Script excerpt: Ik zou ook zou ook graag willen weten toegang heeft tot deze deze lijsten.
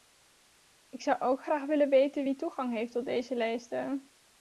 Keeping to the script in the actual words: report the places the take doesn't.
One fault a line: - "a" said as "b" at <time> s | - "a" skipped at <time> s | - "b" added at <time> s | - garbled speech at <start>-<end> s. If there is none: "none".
- "zou ook" skipped at 1.4 s
- "wie" added at 2.2 s
- "deze" skipped at 3.3 s